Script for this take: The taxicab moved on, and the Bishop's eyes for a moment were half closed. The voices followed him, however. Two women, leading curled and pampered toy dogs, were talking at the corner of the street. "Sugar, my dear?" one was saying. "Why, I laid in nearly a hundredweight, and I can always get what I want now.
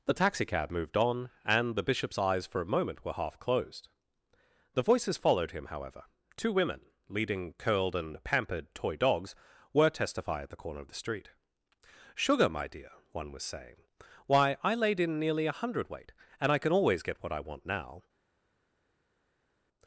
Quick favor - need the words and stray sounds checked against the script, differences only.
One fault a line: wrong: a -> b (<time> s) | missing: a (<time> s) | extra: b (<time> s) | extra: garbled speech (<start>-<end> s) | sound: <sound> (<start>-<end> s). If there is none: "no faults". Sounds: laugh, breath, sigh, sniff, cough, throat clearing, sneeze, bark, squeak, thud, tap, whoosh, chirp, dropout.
wrong: talking -> testify (9.9 s)